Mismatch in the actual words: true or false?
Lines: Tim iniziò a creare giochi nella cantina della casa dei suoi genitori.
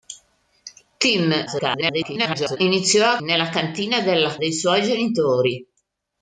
true